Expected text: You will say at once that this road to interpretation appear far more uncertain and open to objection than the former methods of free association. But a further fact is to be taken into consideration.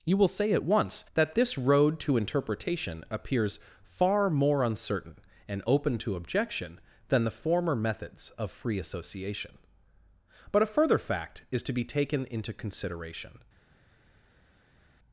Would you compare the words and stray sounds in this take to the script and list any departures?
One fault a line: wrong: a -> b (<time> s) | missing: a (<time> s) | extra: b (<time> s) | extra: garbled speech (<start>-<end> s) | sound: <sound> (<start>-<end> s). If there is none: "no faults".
wrong: appear -> appears (3.1 s)